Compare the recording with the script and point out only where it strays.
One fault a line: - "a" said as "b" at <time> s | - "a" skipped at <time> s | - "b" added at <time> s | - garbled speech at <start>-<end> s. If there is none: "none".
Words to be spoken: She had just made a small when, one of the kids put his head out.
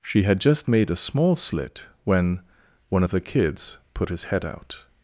- "slit" added at 1.3 s